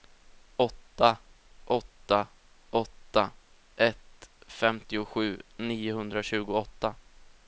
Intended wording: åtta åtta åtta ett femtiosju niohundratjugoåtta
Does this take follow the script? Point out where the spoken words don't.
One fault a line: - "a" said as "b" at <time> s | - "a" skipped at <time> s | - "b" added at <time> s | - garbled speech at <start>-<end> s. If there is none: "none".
none